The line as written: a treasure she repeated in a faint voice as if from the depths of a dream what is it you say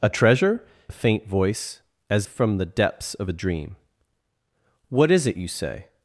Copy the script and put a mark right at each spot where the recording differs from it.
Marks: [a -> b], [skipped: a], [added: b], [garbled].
a treasure [skipped: she repeated in] a faint voice as [skipped: if] from the depths of a dream what is it you say